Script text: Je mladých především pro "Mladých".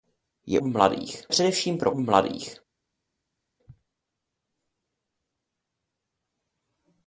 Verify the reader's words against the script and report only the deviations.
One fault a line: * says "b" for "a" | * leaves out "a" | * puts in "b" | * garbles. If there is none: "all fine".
all fine